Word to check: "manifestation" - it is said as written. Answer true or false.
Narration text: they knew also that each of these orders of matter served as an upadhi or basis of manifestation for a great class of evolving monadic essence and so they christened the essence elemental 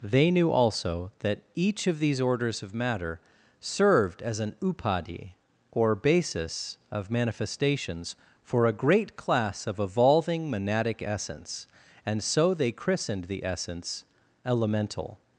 false